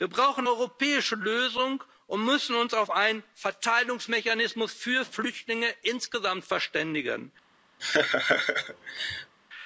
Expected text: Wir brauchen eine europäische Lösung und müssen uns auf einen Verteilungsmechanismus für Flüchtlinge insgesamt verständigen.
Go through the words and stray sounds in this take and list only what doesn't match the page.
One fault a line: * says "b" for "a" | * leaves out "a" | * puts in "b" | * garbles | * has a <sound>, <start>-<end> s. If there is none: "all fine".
* leaves out "eine"
* has a laugh, 7.8-9.3 s